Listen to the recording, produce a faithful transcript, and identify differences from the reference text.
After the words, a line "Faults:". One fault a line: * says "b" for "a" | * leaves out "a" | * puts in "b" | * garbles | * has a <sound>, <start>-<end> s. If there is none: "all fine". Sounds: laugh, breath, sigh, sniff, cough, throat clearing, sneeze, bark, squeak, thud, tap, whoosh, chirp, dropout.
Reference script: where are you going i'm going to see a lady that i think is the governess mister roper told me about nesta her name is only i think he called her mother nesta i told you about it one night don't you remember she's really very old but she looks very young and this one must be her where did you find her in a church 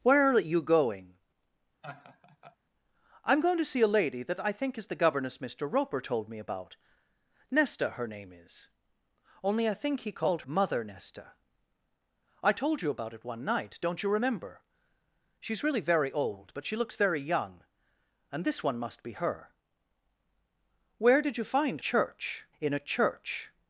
where are you going i'm going to see a lady that i think is the governess mister roper told me about nesta her name is only i think he called mother nesta i told you about it one night don't you remember she's really very old but she looks very young and this one must be her where did you find church in a church
Faults:
* has a laugh, 1.8-2.6 s
* leaves out "her"
* says "church" for "her"